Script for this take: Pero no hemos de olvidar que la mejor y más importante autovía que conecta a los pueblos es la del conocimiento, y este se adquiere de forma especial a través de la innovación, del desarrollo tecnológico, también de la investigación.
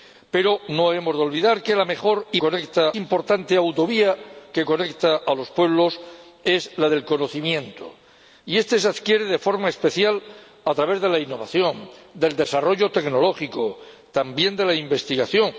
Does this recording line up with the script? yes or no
no